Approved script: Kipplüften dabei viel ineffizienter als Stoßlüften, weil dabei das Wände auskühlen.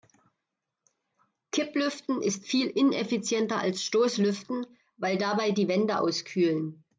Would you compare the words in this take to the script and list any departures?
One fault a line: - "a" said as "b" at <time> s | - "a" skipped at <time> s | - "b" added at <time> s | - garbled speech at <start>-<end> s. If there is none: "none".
- "dabei" said as "ist" at 2.2 s
- "das" said as "die" at 5.5 s